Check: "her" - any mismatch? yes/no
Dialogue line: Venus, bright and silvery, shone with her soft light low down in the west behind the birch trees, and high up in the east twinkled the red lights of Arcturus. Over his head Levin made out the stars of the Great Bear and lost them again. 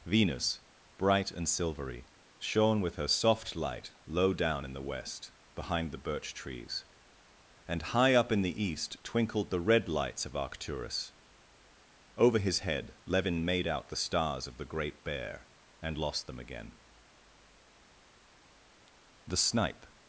no